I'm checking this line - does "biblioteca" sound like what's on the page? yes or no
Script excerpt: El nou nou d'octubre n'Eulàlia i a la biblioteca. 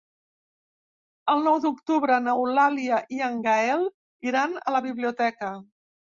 yes